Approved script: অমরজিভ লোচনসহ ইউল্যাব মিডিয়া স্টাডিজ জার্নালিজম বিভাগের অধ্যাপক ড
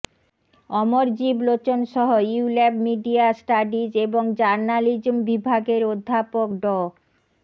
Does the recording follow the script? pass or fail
fail